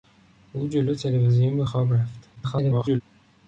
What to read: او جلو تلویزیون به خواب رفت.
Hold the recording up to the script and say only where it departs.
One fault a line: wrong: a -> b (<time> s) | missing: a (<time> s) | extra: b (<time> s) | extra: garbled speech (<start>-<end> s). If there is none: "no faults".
extra: garbled speech (2.3-3.0 s)